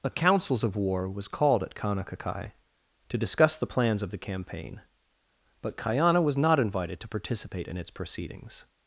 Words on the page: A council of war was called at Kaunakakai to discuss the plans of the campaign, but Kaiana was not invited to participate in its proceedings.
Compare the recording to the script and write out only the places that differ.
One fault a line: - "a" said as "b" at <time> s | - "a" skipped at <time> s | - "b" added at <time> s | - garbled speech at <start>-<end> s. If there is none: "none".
- "council" said as "councils" at 0.1 s